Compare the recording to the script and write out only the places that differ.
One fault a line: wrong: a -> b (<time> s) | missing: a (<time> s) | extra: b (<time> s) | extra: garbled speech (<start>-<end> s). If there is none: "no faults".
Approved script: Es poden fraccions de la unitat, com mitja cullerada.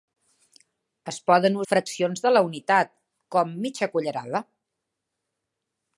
no faults